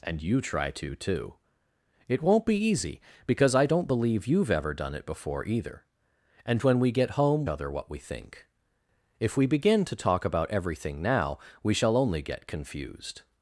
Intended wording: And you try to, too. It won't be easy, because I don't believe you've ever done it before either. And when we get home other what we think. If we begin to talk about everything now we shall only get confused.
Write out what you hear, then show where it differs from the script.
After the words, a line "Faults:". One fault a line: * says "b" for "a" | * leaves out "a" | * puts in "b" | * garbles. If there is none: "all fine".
And you try to, too. It won't be easy, because I don't believe you've ever done it before either. And when we get home other what we think. If we begin to talk about everything now we shall only get confused.
Faults:
all fine